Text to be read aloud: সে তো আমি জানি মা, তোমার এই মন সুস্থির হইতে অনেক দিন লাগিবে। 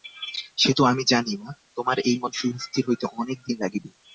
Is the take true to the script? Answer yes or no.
yes